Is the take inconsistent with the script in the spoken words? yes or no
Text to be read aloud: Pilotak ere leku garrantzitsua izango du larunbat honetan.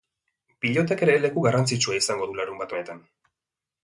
no